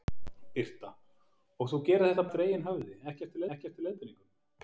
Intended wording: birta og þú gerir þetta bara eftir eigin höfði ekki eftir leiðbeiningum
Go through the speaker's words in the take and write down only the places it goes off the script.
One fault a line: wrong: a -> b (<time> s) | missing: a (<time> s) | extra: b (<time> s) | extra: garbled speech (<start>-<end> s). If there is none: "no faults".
missing: bara (2.3 s)
extra: ekki eftir (3.6 s)